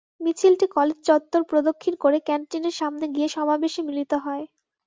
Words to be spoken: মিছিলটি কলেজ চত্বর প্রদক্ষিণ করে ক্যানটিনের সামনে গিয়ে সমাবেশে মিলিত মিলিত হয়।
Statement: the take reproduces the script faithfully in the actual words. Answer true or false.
false